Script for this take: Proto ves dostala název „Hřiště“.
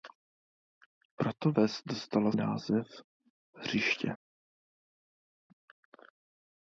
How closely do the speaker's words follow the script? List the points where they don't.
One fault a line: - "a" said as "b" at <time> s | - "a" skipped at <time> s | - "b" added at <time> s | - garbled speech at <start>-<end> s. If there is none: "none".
none